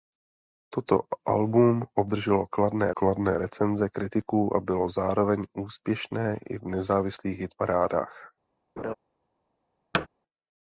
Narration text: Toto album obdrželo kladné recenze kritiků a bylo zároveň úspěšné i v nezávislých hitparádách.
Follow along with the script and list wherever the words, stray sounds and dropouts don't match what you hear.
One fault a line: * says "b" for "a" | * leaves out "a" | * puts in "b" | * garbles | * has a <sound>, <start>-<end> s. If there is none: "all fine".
* puts in "kladné"
* has a laugh, 8.8-8.9 s
* has a thud, 9.9-10.1 s